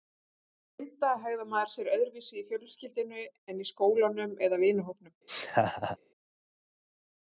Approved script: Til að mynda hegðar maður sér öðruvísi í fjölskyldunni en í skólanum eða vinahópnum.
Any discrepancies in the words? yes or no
no